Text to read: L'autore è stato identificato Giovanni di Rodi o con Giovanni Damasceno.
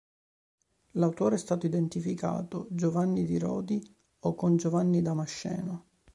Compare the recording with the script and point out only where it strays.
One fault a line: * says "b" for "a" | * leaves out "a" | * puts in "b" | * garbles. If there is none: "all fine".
all fine